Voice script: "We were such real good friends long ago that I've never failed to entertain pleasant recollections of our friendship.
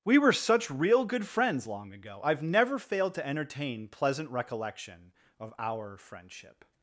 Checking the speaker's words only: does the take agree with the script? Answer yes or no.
no